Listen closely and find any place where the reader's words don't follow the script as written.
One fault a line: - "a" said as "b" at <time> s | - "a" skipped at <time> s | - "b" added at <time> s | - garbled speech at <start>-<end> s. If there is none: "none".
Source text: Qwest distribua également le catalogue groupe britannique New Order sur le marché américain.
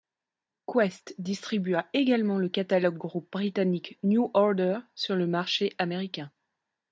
none